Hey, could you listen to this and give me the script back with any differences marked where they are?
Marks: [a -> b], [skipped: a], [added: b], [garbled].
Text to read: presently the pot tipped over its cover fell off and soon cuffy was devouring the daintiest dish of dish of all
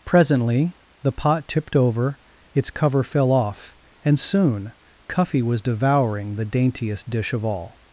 presently the pot tipped over its cover fell off and soon cuffy was devouring the daintiest dish of [skipped: dish of] all